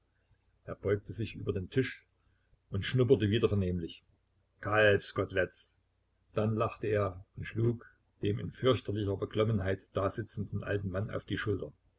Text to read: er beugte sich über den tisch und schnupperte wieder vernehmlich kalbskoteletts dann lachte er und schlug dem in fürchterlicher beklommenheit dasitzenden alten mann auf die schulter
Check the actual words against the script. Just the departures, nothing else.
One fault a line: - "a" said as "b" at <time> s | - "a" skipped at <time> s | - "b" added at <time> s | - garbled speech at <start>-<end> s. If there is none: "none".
none